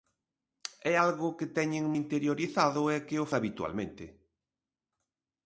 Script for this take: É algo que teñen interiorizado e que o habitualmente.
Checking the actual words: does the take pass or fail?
pass